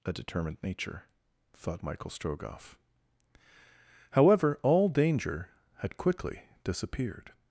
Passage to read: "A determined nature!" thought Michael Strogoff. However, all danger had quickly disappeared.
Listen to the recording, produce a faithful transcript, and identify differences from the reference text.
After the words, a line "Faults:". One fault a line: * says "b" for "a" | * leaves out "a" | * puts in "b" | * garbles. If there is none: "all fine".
"A determined nature!" thought Michael Strogoff. However, all danger had quickly disappeared.
Faults:
all fine